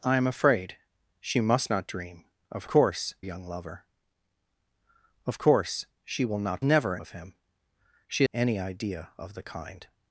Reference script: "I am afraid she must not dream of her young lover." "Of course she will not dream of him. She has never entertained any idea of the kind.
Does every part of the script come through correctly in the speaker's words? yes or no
no